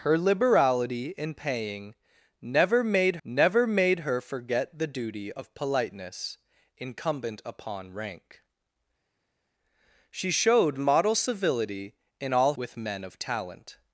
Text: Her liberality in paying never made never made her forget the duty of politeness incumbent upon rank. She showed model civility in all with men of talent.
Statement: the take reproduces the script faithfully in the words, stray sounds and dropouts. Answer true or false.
true